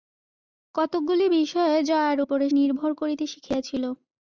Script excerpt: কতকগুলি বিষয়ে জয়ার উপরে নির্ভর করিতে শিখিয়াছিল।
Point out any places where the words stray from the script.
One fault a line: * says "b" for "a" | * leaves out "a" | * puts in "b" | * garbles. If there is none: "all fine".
all fine